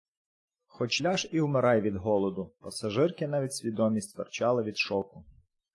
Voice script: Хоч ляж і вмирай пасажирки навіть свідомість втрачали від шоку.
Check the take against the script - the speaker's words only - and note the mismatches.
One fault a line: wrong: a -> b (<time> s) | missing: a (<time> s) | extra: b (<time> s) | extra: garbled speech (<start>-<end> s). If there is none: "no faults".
extra: від голоду (1.8 s)